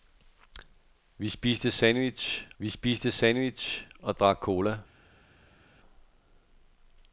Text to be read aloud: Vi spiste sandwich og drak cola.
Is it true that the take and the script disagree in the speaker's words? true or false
true